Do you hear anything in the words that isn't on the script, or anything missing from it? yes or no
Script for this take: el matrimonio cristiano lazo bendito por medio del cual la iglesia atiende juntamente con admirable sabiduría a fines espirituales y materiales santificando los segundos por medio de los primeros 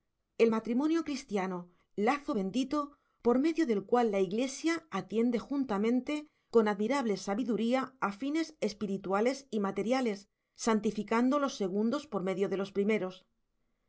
no